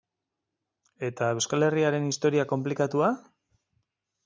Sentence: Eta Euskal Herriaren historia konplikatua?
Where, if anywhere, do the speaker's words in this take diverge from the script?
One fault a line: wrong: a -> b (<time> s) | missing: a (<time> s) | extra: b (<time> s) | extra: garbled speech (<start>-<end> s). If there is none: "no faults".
no faults